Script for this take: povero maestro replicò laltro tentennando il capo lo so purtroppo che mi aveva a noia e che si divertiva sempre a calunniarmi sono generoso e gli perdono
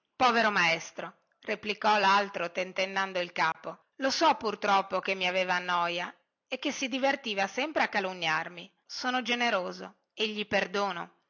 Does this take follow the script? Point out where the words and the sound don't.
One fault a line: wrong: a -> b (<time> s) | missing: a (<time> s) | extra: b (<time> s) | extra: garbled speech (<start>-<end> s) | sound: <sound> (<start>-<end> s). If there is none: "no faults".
sound: dropout (3.5-3.5 s)